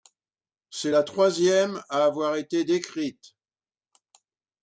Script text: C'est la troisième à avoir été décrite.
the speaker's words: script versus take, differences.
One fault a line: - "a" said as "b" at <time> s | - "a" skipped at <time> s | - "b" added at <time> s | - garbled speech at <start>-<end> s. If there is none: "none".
none